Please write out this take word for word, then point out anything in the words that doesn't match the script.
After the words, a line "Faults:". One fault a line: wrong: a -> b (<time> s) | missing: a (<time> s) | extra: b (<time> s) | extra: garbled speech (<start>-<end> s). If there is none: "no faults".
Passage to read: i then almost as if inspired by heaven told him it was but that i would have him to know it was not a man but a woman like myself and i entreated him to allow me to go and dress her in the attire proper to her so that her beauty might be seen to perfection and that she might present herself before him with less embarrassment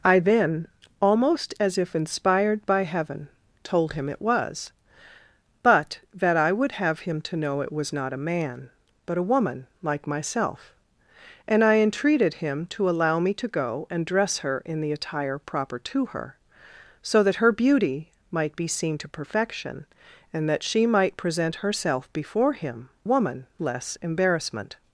i then almost as if inspired by heaven told him it was but that i would have him to know it was not a man but a woman like myself and i entreated him to allow me to go and dress her in the attire proper to her so that her beauty might be seen to perfection and that she might present herself before him woman less embarrassment
Faults:
wrong: with -> woman (23.0 s)